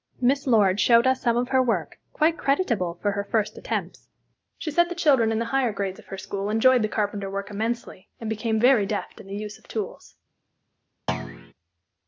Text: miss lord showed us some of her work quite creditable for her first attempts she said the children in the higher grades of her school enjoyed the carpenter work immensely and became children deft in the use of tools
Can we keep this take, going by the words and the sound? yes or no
no